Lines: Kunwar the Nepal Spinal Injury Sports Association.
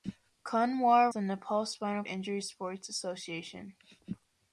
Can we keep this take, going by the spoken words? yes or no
yes